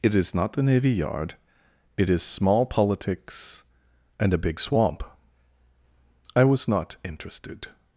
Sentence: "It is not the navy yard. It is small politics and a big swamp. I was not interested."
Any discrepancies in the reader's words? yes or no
no